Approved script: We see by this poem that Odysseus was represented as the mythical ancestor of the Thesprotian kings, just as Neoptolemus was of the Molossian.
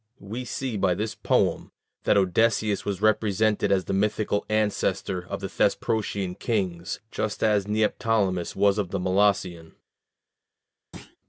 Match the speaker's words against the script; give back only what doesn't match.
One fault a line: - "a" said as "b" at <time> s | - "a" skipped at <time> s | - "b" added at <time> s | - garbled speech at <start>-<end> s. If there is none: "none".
none